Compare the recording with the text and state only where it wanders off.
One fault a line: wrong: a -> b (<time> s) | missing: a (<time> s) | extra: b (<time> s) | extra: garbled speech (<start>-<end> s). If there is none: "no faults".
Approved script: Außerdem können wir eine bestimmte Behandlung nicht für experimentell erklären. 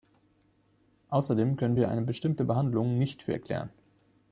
missing: experimentell (3.3 s)